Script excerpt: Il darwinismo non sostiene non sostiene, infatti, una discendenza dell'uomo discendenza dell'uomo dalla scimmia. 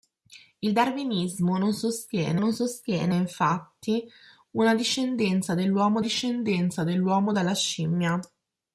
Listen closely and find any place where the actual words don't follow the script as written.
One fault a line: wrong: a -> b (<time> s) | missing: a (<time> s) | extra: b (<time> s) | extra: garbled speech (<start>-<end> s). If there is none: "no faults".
no faults